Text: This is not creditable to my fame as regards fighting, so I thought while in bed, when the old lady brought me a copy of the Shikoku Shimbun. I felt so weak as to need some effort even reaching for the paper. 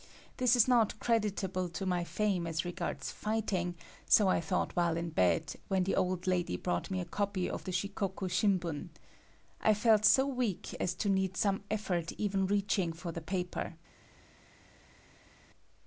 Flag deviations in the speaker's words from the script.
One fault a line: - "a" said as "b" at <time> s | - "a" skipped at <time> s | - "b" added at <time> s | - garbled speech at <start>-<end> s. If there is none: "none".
none